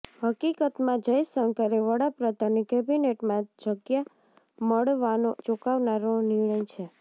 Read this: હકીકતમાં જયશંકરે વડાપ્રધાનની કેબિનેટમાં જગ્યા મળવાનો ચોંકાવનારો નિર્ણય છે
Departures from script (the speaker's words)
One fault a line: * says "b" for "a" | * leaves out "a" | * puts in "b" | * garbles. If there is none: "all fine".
all fine